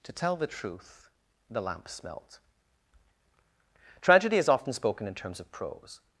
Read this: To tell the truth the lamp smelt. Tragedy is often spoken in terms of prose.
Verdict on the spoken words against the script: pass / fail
pass